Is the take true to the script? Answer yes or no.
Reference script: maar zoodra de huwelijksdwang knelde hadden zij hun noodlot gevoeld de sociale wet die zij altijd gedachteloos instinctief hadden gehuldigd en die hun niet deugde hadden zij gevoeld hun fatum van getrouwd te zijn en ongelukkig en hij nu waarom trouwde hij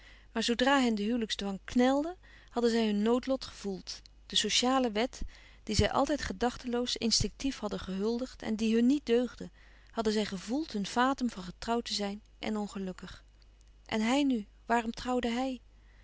no